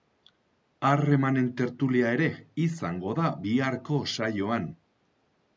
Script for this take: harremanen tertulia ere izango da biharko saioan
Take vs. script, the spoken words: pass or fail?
pass